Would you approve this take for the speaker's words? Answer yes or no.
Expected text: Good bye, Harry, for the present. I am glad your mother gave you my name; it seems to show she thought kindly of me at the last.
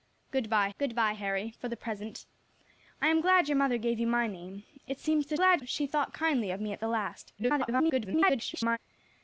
no